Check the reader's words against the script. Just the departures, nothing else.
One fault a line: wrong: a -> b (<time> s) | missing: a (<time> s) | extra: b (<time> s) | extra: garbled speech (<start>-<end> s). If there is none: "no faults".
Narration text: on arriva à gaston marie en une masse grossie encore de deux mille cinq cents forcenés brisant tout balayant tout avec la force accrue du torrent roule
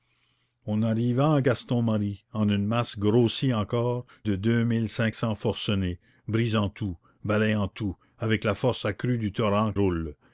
no faults